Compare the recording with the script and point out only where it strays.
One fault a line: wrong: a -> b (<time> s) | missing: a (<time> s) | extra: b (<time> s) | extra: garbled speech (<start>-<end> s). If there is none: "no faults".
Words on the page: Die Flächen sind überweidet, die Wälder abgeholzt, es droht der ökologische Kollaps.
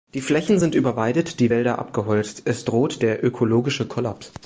no faults